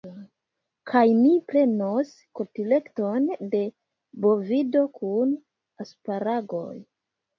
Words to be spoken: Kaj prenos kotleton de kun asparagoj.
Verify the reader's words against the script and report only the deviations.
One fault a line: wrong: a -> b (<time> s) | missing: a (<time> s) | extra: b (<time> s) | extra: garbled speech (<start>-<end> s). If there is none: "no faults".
extra: mi (1.2 s)
extra: bovido (4.3 s)